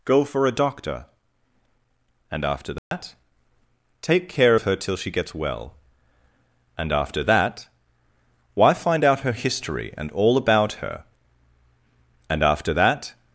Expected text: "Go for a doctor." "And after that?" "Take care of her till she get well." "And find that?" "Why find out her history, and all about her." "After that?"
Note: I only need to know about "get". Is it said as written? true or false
false